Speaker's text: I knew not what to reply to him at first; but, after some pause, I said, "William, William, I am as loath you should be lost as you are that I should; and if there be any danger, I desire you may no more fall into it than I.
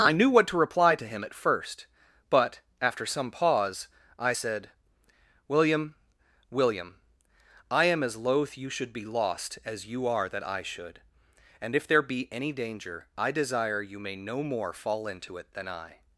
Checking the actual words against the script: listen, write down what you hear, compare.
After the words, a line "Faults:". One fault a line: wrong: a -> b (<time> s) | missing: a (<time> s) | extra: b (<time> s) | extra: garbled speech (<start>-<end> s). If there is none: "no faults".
I knew what to reply to him at first; but, after some pause, I said, "William, William, I am as loath you should be lost as you are that I should; and if there be any danger, I desire you may no more fall into it than I.
Faults:
missing: not (0.3 s)